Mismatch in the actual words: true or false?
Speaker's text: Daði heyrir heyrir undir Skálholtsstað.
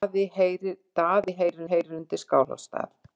false